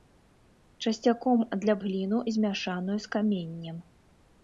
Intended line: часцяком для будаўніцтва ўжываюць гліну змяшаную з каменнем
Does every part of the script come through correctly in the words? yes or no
no